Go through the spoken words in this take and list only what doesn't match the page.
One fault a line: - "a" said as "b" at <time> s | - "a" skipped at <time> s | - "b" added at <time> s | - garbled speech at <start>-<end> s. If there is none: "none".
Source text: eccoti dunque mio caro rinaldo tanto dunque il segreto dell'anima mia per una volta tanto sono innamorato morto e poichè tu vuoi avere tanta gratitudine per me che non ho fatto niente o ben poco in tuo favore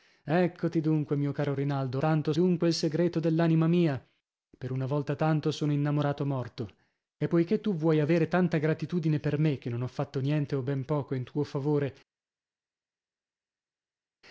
none